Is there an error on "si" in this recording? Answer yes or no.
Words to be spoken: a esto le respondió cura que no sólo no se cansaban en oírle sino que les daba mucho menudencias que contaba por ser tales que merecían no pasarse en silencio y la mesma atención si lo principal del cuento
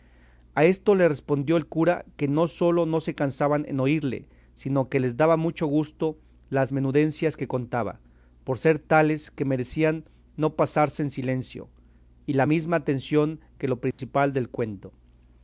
yes